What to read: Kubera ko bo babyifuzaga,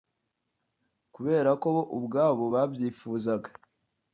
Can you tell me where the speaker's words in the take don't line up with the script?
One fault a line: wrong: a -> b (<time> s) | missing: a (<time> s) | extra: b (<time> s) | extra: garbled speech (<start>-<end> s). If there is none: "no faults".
extra: ubwabo (2.0 s)